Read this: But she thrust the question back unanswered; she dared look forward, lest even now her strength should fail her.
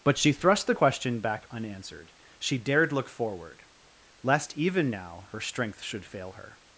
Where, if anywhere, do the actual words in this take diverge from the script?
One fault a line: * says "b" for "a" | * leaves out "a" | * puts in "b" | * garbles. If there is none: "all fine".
all fine